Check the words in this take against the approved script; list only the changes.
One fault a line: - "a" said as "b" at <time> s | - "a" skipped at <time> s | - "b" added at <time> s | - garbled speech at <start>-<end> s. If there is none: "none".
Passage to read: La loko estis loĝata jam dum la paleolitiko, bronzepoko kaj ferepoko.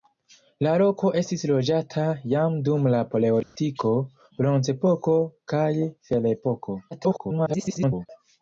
- garbled speech at 6.9-8.1 s